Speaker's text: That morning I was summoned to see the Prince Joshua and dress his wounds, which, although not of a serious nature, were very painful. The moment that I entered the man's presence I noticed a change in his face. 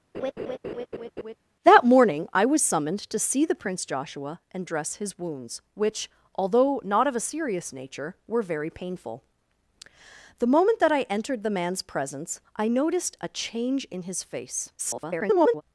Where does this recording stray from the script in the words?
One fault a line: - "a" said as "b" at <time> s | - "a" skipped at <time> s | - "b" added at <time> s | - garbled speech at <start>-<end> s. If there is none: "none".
- garbled speech at 14.8-15.6 s